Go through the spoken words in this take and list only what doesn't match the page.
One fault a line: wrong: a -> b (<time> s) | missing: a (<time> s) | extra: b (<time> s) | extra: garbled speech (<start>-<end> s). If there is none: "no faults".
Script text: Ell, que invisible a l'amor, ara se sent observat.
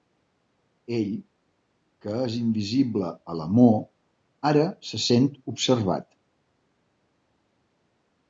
extra: és (2.3 s)